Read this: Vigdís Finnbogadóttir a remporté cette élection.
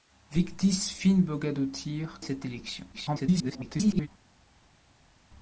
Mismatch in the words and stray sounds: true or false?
true